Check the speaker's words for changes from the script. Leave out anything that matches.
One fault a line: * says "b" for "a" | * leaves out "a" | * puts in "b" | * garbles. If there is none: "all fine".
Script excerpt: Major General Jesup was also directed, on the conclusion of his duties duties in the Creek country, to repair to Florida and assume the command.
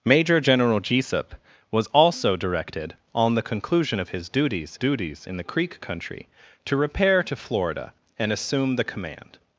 all fine